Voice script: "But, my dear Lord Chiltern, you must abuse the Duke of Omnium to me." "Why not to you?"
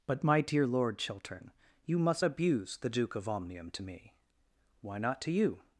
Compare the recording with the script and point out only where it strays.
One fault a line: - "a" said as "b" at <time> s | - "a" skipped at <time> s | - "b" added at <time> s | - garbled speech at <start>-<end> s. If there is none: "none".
none